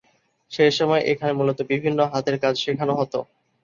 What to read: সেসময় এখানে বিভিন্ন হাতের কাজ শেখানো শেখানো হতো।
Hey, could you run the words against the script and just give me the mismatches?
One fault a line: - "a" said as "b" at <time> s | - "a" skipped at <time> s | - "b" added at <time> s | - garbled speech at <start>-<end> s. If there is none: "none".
- "মূলত" added at 1.3 s
- "শেখানো" skipped at 2.9 s